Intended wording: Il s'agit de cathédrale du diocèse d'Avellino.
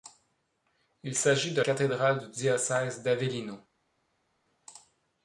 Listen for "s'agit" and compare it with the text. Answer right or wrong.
right